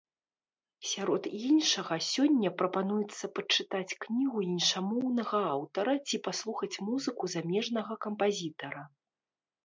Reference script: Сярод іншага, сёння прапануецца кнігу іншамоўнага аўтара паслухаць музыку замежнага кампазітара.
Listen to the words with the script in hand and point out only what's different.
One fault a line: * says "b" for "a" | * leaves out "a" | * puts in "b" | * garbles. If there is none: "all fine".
* puts in "пачытаць"
* puts in "ці"